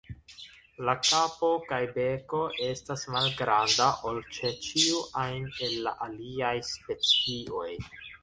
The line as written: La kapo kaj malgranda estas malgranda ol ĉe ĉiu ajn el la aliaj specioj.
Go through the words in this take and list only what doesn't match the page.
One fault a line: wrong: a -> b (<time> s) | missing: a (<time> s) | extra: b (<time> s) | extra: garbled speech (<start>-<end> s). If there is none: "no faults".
wrong: malgranda -> beko (1.9 s)